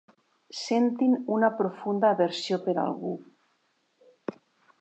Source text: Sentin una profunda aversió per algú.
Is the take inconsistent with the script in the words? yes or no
no